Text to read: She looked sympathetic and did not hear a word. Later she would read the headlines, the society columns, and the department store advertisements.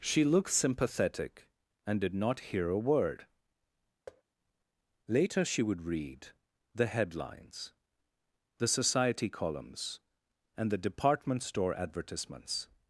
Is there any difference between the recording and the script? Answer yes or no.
no